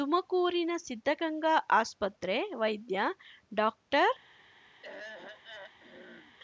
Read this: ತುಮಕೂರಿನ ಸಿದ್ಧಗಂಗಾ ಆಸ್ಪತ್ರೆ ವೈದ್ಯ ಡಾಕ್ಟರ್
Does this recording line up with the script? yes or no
yes